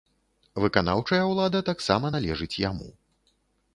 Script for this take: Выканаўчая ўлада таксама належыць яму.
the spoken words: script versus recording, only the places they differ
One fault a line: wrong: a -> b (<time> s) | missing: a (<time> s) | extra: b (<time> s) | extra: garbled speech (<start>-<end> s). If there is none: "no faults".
no faults